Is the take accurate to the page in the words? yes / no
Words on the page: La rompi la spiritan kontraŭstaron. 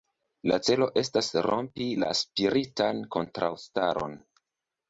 no